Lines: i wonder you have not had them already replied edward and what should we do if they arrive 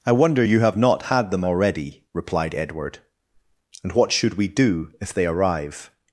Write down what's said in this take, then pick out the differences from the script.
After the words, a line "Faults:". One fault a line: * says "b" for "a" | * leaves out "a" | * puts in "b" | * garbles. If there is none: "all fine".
i wonder you have not had them already replied edward and what should we do if they arrive
Faults:
all fine